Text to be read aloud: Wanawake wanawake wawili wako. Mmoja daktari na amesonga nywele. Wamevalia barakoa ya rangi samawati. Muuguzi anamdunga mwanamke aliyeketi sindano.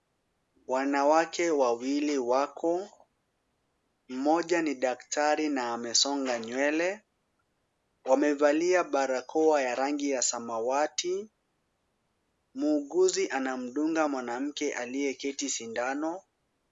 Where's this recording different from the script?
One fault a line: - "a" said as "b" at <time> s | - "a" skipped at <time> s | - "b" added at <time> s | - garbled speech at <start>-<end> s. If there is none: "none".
- "wanawake" skipped at 1.5 s
- "ni" added at 4.6 s
- "ya" added at 10.1 s